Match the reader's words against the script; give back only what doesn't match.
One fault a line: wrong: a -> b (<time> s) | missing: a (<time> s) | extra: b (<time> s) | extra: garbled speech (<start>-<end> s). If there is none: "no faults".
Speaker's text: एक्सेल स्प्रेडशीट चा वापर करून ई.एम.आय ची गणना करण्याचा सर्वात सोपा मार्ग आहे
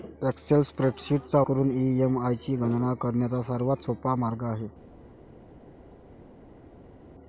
missing: वापर (1.4 s)